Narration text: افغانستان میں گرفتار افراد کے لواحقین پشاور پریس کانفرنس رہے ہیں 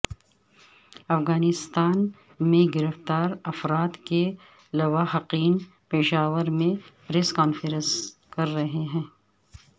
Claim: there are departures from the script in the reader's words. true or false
true